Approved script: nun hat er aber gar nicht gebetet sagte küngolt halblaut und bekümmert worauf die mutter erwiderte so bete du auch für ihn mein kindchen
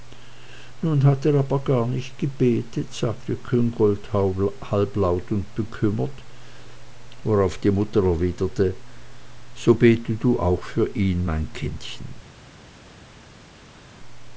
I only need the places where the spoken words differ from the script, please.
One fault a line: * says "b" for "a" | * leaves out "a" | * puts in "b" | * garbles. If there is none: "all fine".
all fine